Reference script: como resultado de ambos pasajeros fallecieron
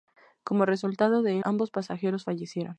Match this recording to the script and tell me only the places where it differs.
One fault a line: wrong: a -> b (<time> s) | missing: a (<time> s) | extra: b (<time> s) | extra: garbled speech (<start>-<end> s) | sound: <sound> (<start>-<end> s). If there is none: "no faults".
no faults